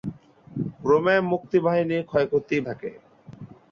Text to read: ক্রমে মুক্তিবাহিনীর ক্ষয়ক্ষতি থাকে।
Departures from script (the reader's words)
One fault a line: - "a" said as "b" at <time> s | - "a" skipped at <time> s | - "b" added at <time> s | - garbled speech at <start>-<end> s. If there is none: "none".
none